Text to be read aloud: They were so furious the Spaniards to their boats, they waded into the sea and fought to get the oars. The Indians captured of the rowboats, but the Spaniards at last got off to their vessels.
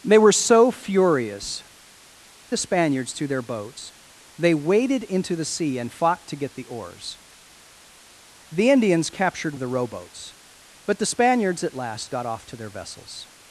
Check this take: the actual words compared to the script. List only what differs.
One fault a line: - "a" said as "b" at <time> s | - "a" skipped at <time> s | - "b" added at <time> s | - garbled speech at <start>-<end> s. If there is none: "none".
none